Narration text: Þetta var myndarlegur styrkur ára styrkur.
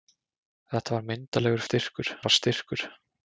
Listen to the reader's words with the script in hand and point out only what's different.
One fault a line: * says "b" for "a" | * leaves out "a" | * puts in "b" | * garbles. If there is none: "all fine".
all fine